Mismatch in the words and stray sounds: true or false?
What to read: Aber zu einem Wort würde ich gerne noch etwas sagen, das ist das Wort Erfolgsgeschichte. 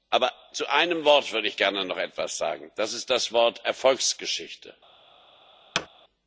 true